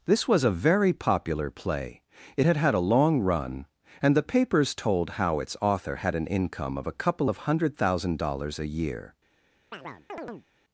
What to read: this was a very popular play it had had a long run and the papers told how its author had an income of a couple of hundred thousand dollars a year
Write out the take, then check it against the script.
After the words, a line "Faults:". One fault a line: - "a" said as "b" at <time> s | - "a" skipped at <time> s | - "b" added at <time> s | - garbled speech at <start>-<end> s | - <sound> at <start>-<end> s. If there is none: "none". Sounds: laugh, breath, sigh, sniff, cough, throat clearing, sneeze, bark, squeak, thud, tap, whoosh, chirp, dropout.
this was a very popular play it had had a long run and the papers told how its author had an income of a couple of hundred thousand dollars a year
Faults:
- chirp at 9.7-10.5 s